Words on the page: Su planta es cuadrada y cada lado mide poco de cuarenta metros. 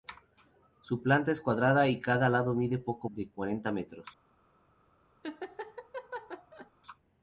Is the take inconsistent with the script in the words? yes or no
no